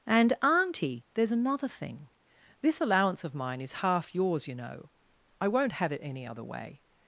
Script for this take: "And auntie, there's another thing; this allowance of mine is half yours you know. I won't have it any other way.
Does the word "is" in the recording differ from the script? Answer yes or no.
no